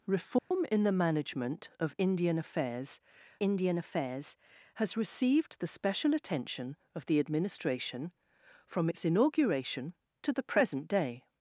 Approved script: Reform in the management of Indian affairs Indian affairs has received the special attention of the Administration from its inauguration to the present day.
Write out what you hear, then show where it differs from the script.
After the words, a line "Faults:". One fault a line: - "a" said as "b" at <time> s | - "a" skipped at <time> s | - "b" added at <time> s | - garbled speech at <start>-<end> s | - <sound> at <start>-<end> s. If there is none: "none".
Reform in the management of Indian affairs Indian affairs has received the special attention of the Administration from its inauguration to the present day.
Faults:
- dropout at 0.4-0.5 s